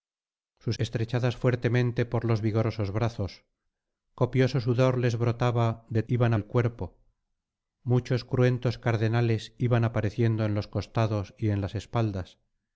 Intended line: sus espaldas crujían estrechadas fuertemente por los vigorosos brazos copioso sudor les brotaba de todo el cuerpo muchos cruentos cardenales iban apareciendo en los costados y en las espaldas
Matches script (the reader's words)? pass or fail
fail